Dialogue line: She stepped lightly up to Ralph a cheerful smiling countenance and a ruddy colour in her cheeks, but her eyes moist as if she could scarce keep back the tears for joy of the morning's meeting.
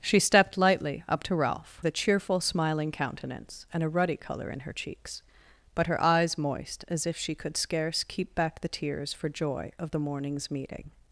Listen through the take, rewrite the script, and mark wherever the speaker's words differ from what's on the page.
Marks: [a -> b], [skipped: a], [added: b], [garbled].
She stepped lightly up to Ralph a cheerful smiling countenance and a ruddy colour in her cheeks, but her eyes moist as if she could scarce keep back the tears for joy of the morning's meeting.